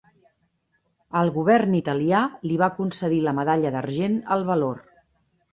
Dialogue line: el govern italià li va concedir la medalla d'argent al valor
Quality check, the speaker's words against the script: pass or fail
pass